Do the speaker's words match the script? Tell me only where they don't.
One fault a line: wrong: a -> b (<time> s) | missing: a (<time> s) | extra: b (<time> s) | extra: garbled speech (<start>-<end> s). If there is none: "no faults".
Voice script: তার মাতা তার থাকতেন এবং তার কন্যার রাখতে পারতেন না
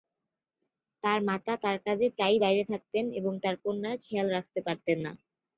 extra: কাজে প্রায়ই বাইরে (1.9 s)
extra: খেয়াল (4.1 s)